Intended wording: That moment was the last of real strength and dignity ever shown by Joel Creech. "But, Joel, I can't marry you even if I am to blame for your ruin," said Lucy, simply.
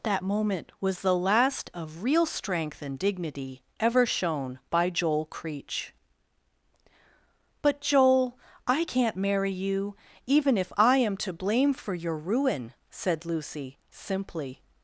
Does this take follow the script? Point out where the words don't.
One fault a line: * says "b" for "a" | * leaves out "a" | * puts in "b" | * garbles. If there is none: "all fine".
all fine